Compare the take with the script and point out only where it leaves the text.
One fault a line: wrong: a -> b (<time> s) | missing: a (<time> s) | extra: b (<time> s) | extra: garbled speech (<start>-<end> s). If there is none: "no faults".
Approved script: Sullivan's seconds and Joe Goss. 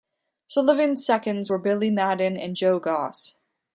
extra: were Billy Madden (1.5 s)